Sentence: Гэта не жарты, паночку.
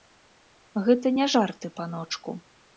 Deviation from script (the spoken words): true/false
false